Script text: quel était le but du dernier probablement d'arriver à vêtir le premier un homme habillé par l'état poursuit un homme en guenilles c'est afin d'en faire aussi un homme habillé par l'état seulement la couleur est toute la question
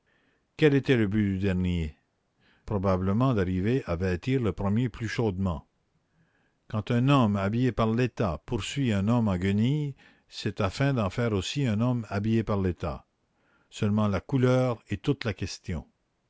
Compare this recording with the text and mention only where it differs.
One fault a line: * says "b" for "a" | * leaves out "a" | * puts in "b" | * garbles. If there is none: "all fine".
* puts in "plus chaudement quand"